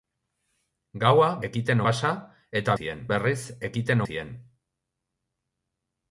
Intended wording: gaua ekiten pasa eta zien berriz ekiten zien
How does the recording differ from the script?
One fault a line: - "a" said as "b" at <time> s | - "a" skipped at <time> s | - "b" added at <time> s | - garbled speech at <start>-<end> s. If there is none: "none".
none